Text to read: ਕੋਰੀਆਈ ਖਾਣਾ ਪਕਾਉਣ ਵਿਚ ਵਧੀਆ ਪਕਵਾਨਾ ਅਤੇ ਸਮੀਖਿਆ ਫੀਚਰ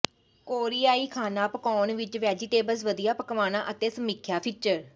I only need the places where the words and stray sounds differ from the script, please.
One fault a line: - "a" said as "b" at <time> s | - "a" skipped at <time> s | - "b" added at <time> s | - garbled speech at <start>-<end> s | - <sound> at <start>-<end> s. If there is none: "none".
- "ਵੈਜੀਟੇਬਲਜ਼" added at 2.2 s